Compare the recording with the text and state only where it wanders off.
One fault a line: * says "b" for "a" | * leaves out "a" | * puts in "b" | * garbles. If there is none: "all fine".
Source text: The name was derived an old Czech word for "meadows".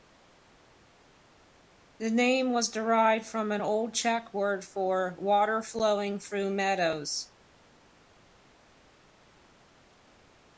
* puts in "from"
* puts in "water flowing through"